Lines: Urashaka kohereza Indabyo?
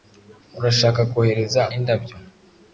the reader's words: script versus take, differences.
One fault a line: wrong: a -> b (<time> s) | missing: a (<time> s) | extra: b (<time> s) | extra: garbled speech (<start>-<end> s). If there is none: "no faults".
no faults